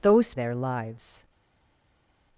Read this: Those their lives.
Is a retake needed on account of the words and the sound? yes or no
no